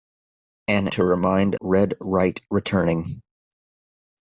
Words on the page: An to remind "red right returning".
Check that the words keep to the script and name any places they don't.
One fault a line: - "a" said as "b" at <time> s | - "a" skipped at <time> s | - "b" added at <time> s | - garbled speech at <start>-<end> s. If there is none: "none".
none